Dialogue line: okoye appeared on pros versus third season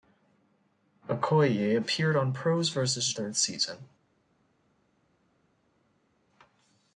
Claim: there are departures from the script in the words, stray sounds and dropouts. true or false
false